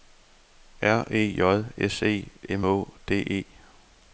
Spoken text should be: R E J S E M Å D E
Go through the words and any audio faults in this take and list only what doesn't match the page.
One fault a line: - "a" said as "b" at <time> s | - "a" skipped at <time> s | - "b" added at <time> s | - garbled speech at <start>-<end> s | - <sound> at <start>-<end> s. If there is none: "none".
none